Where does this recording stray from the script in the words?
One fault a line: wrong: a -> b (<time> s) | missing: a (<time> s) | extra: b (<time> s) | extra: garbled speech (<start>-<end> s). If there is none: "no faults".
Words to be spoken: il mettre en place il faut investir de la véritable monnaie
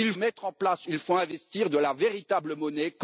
no faults